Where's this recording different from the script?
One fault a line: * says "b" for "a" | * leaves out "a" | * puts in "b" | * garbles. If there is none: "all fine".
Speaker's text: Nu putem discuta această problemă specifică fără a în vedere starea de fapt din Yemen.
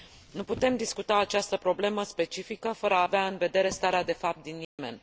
* puts in "avea"